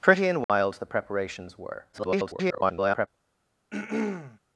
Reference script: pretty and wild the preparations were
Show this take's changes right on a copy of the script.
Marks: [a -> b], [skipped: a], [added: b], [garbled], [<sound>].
pretty and wild [dropout] the preparations were [garbled] [throat clearing]